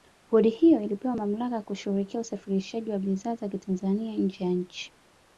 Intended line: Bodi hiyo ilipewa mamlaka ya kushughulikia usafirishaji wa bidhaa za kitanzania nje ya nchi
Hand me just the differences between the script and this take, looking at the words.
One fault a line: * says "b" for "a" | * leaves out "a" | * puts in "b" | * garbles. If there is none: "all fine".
all fine